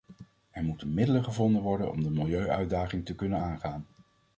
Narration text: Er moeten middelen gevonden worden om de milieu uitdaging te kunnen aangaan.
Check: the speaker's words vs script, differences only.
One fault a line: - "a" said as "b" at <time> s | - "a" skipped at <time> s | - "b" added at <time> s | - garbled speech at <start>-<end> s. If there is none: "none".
none